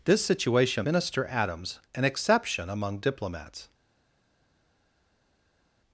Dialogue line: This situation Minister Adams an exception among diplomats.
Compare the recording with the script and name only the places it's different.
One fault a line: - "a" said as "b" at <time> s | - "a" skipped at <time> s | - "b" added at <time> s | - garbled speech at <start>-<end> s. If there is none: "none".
none